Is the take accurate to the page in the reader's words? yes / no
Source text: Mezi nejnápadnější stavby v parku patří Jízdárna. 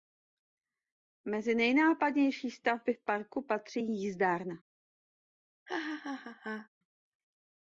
yes